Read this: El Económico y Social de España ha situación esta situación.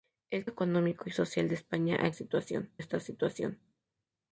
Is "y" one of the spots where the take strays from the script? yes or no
no